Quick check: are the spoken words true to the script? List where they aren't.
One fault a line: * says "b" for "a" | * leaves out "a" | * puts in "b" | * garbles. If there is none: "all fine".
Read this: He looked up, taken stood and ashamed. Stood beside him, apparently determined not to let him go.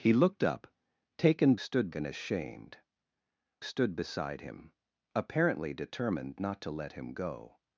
all fine